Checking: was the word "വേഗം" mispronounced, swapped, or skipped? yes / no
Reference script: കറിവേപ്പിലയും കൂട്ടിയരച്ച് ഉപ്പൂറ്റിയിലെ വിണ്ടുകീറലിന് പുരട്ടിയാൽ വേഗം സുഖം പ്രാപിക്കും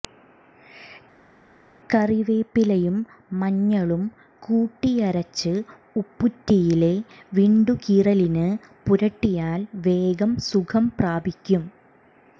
no